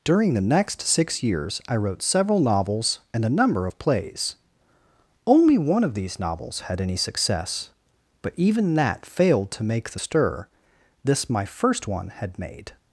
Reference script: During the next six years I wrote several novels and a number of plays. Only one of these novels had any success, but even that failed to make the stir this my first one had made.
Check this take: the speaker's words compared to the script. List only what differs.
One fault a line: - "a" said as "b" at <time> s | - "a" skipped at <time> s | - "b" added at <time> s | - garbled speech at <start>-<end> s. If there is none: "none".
none